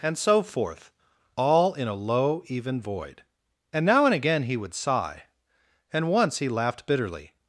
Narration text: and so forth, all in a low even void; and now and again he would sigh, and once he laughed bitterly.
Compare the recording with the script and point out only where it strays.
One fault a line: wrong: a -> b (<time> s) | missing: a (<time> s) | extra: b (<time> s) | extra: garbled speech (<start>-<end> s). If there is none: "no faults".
no faults